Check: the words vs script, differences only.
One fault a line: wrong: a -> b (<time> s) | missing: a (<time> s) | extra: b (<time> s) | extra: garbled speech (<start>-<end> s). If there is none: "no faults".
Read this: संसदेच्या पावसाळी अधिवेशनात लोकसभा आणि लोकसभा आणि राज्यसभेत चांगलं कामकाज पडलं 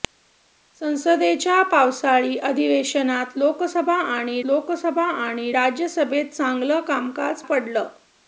no faults